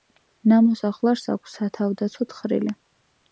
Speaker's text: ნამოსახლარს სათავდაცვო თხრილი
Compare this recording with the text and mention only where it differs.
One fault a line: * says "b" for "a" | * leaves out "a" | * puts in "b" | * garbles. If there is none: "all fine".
* puts in "აქვს"